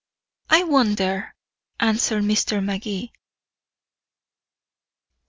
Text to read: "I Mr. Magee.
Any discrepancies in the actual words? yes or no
yes